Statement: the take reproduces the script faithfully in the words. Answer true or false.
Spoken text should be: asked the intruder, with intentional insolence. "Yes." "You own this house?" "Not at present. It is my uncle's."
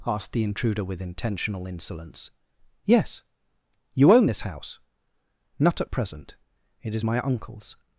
true